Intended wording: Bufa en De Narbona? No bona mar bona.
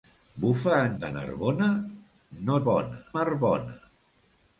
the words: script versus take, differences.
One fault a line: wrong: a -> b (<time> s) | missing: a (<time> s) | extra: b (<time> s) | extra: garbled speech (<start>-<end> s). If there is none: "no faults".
no faults